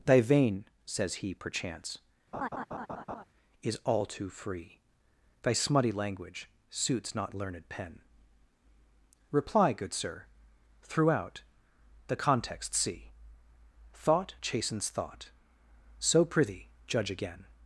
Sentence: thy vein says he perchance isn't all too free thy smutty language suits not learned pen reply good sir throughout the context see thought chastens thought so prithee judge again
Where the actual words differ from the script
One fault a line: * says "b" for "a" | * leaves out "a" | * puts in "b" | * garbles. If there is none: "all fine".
* says "is" for "isn't"